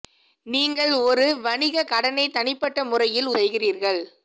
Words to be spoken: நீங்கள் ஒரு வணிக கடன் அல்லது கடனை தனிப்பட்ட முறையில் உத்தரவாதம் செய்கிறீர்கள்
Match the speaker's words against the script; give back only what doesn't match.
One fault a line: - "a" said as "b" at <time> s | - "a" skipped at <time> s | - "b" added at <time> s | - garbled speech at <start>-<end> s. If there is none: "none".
- "கடன் அல்லது" skipped at 1.8 s
- "உத்தரவாதம்" skipped at 3.3 s